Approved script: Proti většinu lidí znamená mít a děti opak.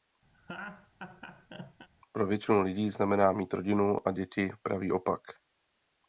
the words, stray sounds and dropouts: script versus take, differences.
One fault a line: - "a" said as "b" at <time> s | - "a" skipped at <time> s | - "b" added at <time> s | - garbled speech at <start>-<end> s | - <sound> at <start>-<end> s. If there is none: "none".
- laugh at 0.3-1.9 s
- "Proti" said as "Pro" at 2.1 s
- "rodinu" added at 3.5 s
- "pravý" added at 4.6 s